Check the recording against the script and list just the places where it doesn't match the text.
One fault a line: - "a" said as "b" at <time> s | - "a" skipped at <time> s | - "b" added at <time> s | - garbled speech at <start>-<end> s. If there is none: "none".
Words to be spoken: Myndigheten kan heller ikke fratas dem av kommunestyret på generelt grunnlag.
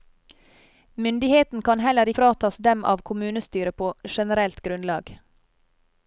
- "ikke" skipped at 2.1 s